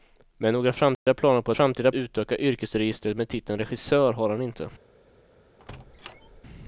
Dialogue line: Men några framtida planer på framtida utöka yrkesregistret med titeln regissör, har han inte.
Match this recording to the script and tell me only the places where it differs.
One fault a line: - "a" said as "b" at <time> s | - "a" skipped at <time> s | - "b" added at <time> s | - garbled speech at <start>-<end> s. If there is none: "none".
none